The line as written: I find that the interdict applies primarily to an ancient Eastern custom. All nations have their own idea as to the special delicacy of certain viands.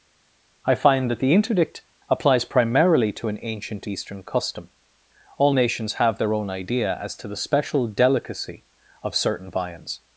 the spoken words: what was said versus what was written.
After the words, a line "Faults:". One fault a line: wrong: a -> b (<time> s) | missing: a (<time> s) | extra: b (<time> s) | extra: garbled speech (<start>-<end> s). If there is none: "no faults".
I find that the interdict applies primarily to an ancient Eastern custom. All nations have their own idea as to the special delicacy of certain viands.
Faults:
no faults